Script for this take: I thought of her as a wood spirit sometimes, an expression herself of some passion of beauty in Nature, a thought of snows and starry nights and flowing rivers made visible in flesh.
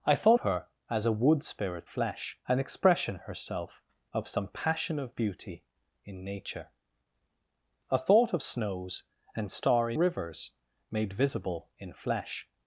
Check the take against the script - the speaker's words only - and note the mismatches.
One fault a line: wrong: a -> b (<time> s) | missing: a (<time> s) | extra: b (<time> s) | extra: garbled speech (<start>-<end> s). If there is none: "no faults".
missing: of (0.4 s)
wrong: sometimes -> flesh (1.8 s)
missing: nights and flowing (10.0 s)